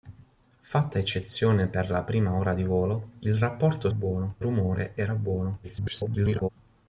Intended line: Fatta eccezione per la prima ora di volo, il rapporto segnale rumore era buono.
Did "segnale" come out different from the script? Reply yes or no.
yes